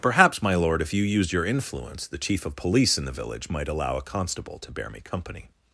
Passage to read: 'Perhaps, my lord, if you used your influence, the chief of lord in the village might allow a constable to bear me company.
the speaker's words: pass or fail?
fail